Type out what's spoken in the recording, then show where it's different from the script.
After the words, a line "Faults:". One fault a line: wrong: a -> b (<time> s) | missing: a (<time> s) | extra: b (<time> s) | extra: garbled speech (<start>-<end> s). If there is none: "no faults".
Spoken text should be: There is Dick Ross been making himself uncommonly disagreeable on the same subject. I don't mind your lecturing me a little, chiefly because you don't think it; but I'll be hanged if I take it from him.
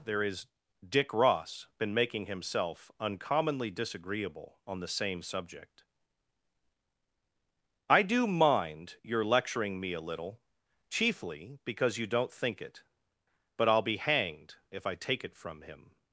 There is Dick Ross been making himself uncommonly disagreeable on the same subject. I do mind your lecturing me a little, chiefly because you don't think it; but I'll be hanged if I take it from him.
Faults:
wrong: don't -> do (8.0 s)